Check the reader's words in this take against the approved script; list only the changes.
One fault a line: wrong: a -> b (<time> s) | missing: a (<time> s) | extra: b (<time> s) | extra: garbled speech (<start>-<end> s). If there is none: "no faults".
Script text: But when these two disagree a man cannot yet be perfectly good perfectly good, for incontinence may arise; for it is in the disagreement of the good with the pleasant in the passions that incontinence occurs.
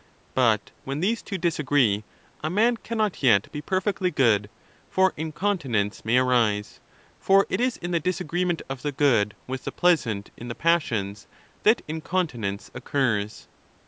missing: perfectly good (4.5 s)